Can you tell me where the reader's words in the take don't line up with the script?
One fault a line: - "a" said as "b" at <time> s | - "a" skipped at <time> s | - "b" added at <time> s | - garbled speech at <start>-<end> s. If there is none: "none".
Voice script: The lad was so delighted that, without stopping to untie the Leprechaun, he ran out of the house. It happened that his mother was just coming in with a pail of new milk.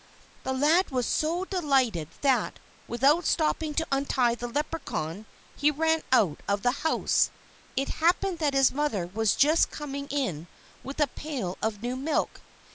none